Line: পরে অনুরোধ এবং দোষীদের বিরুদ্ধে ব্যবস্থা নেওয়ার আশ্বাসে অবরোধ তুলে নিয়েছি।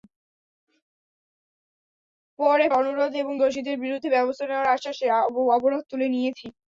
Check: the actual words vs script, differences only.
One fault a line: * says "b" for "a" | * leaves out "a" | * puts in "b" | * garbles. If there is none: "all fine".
all fine